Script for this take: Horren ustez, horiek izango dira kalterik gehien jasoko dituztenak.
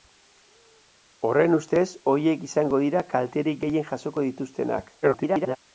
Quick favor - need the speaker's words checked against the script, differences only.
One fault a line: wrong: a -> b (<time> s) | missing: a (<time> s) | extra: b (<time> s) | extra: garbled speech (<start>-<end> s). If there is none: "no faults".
extra: garbled speech (5.0-5.6 s)